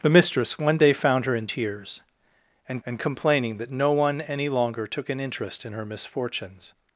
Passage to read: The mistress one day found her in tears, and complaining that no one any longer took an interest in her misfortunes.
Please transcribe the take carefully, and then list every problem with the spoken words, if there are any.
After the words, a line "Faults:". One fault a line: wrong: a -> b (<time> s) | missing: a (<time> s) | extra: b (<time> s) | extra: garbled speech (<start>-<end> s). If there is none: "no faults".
The mistress one day found her in tears, and and complaining that no one any longer took an interest in her misfortunes.
Faults:
extra: and (2.8 s)